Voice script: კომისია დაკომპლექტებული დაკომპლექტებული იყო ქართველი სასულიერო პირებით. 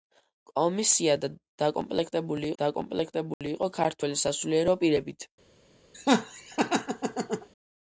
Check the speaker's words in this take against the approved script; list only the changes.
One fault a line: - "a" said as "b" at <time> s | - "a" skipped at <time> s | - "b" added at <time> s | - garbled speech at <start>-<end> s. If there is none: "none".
none